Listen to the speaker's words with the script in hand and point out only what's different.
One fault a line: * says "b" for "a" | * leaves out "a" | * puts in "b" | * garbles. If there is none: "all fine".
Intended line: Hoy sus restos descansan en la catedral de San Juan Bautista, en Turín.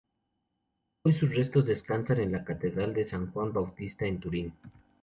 all fine